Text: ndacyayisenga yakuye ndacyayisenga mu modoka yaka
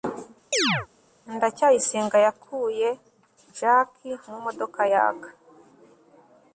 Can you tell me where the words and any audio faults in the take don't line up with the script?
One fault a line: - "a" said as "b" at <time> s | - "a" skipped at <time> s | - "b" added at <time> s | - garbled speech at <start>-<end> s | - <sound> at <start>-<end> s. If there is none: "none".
- chirp at 0.5-0.9 s
- "ndacyayisenga" said as "jaki" at 3.6 s